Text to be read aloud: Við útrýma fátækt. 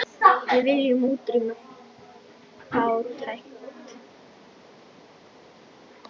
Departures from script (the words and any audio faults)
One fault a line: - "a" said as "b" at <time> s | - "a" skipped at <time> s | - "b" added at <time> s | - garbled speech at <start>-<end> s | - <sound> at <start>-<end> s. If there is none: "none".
- "viljum" added at 0.7 s